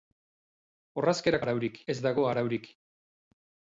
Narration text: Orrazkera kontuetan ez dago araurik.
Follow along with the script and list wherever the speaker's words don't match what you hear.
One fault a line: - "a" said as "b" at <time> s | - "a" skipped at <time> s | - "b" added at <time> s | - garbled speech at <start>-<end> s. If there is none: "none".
- "kontuetan" said as "araurik" at 1.4 s